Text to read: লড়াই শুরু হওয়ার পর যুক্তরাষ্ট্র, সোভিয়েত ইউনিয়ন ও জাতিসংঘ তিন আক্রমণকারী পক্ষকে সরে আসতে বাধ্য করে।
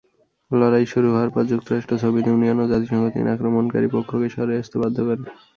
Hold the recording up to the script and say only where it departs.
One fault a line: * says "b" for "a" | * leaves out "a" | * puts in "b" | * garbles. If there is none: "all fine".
all fine